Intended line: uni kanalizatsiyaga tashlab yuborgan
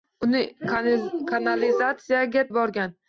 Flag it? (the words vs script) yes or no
yes